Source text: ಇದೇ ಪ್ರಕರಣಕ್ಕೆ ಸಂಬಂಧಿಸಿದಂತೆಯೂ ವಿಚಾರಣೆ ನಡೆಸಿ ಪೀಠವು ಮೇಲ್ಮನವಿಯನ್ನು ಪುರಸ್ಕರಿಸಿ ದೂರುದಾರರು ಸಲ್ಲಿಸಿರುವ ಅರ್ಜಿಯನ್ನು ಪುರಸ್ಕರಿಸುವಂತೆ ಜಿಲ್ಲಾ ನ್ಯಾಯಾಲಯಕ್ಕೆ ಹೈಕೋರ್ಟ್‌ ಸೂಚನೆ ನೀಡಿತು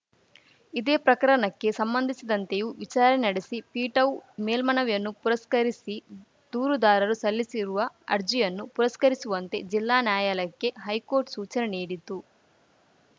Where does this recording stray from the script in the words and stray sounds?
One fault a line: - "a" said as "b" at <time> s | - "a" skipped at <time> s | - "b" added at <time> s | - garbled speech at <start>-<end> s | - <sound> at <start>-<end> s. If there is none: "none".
none